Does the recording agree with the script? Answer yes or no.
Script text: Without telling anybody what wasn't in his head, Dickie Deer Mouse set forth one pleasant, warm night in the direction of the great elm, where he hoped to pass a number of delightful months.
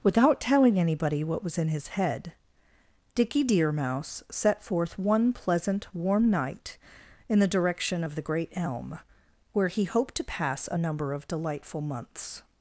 no